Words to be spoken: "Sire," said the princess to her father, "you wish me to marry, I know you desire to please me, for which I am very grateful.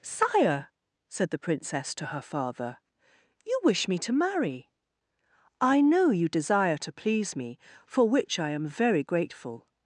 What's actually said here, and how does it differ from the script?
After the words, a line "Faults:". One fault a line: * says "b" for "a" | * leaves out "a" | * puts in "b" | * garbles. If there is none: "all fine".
"Sire," said the princess to her father, "you wish me to marry, I know you desire to please me, for which I am very grateful.
Faults:
all fine